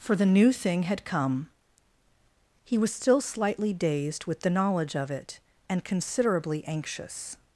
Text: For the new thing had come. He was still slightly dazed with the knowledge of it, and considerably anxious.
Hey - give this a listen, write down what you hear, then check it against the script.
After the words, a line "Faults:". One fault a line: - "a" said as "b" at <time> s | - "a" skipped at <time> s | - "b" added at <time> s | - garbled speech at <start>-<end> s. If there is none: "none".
For the new thing had come. He was still slightly dazed with the knowledge of it, and considerably anxious.
Faults:
none